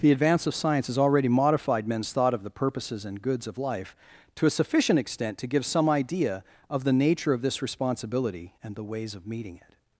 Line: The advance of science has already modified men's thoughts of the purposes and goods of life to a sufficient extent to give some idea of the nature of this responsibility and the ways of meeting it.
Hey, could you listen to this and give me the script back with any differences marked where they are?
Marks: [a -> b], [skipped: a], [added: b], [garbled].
The advance of science has already modified men's [thoughts -> thought] of the purposes and goods of life to a sufficient extent to give some idea of the nature of this responsibility and the ways of meeting it.